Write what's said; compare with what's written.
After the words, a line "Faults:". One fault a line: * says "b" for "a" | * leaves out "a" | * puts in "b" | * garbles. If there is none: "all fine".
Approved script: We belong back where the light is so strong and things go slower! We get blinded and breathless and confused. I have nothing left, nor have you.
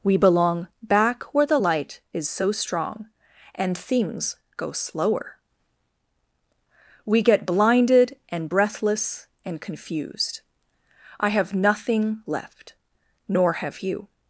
We belong back where the light is so strong and things go slower! We get blinded and breathless and confused. I have nothing left, nor have you.
Faults:
all fine